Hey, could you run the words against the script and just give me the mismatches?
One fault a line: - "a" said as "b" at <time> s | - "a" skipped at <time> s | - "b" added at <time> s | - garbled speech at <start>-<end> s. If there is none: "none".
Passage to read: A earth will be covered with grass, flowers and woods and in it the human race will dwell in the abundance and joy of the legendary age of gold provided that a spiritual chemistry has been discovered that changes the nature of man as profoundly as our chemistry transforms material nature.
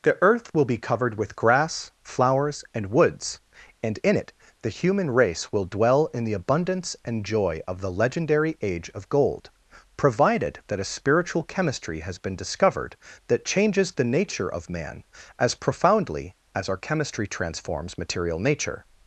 - "A" said as "The" at 0.0 s